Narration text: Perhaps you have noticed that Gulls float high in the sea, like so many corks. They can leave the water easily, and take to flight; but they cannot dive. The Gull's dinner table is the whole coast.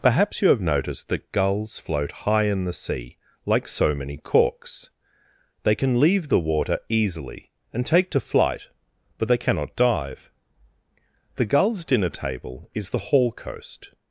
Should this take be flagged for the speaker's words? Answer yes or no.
yes